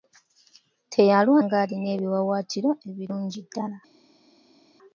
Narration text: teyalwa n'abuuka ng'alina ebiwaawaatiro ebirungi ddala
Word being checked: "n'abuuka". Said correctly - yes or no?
no